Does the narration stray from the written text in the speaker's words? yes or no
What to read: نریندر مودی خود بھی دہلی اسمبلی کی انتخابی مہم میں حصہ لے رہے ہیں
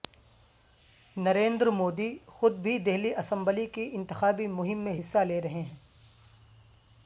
no